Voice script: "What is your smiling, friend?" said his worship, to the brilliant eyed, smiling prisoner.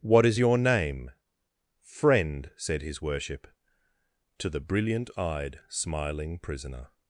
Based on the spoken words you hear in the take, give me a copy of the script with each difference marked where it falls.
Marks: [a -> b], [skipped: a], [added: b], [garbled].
"What is your [smiling, -> name] friend?" said his worship, to the brilliant eyed, smiling prisoner.